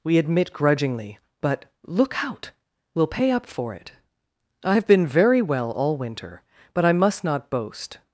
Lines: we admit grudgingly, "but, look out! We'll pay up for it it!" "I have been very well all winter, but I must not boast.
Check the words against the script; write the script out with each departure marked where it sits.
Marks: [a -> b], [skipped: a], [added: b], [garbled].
we admit grudgingly, "but, look out! We'll pay up for it [skipped: it!"] "I have been very well all winter, but I must not boast.